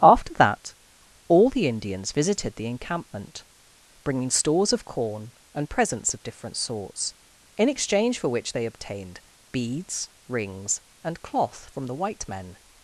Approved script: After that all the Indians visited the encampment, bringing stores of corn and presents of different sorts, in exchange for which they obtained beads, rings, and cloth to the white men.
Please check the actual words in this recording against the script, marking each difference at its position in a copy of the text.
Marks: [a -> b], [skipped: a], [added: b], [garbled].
After that all the Indians visited the encampment, bringing stores of corn and presents of different sorts, in exchange for which they obtained beads, rings, and cloth [to -> from] the white men.